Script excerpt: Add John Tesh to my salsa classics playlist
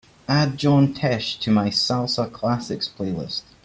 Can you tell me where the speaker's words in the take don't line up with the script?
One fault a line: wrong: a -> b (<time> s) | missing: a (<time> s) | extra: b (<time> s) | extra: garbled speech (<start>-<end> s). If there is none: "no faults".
no faults